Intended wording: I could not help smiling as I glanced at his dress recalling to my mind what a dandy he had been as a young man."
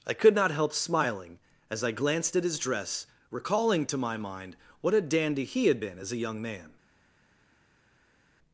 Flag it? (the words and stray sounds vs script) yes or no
no